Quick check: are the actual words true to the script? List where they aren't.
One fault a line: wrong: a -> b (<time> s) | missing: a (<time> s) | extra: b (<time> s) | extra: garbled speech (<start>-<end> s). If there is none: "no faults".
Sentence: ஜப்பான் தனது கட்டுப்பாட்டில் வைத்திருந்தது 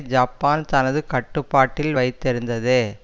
no faults